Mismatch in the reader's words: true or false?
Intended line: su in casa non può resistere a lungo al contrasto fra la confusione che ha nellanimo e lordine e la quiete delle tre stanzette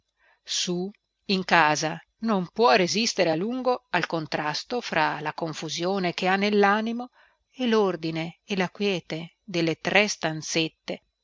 false